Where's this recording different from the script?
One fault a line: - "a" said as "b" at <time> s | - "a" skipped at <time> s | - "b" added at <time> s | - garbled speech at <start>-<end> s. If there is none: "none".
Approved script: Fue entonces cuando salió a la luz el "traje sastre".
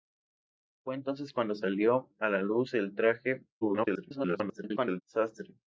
- garbled speech at 3.6-5.0 s